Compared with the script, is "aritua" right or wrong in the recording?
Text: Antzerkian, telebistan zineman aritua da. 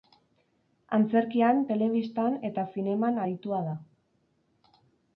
right